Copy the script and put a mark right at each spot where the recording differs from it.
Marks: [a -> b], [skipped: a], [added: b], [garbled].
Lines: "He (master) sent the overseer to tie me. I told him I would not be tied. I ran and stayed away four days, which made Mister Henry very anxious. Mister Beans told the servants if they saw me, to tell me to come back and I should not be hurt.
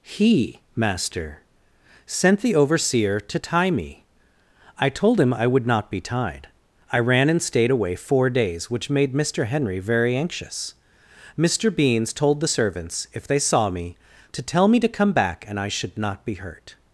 "He (master) sent the overseer to tie me. I told him I would not be tied. I ran and stayed away four days, which made Mister Henry very anxious. Mister Beans told the servants if they saw me, to tell me to come back and I should not be hurt.